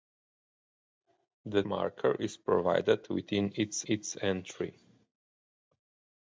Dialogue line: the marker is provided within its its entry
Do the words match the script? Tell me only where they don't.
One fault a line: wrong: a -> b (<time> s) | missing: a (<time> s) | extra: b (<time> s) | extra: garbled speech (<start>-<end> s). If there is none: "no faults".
no faults